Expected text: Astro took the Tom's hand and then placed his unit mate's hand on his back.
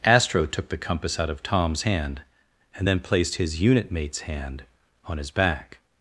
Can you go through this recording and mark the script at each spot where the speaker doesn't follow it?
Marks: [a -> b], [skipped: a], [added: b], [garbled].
Astro took the [added: compass out of] Tom's hand and then placed his unit mate's hand on his back.